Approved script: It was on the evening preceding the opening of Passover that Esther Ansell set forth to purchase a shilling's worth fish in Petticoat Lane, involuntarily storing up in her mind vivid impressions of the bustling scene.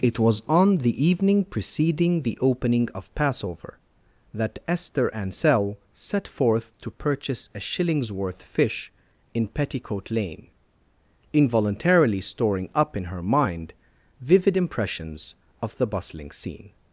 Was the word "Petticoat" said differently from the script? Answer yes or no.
no